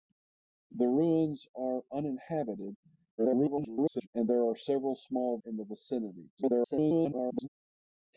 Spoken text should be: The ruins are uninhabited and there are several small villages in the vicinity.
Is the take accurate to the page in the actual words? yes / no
no